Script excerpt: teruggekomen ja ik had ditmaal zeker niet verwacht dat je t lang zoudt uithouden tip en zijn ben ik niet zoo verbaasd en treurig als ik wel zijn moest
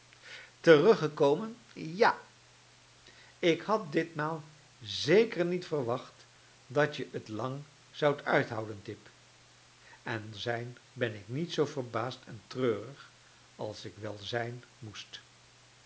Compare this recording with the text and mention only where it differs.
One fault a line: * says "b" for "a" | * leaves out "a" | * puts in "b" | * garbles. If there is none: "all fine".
all fine